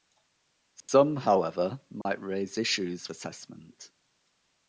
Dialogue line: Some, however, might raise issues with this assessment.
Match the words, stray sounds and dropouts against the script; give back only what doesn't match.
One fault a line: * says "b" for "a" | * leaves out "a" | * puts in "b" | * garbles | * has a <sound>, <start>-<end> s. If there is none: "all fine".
* has a dropout, 0.8-0.9 s
* has a dropout, 2.0-2.1 s
* leaves out "with this"